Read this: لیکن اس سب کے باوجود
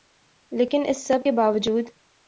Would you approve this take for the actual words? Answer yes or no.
yes